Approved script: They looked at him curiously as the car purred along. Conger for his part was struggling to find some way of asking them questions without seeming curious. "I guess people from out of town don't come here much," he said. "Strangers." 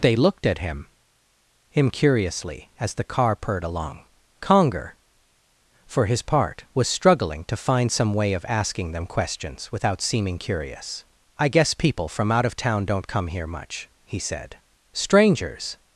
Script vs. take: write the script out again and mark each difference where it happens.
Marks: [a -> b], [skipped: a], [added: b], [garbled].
They looked at him [added: him] curiously as the car purred along. Conger for his part was struggling to find some way of asking them questions without seeming curious. "I guess people from out of town don't come here much," he said. "Strangers."